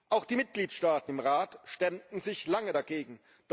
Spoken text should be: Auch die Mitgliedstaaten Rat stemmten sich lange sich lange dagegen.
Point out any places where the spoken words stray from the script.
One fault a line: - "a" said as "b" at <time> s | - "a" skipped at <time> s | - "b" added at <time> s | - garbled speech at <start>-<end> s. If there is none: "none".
- "im" added at 1.1 s
- "sich lange" skipped at 2.7 s